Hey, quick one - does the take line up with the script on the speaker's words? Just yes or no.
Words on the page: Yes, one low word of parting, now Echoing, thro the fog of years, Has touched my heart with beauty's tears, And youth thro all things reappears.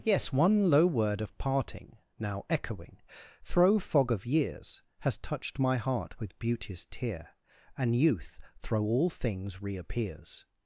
no